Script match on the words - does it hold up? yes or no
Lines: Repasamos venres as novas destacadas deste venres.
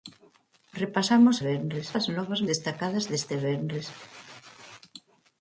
yes